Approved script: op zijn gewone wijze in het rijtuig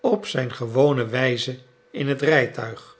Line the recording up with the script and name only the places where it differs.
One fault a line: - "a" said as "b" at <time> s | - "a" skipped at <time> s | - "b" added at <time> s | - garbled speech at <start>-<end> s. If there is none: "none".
none